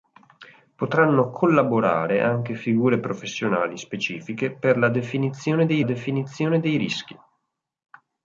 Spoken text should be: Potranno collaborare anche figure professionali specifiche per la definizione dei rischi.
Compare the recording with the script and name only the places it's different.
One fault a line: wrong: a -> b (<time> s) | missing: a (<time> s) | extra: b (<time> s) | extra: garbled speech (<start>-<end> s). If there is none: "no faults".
extra: definizione dei (5.8 s)